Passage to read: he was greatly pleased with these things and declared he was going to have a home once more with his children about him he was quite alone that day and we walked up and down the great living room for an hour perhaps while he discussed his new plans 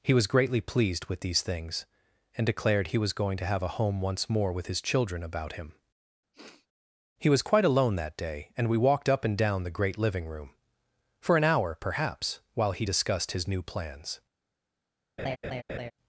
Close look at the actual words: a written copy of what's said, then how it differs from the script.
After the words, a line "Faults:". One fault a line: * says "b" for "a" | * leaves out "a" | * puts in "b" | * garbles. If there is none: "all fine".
he was greatly pleased with these things and declared he was going to have a home once more with his children about him he was quite alone that day and we walked up and down the great living room for an hour perhaps while he discussed his new plans
Faults:
all fine